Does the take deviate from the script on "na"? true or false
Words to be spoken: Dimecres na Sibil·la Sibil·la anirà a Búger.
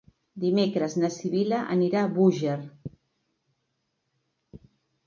false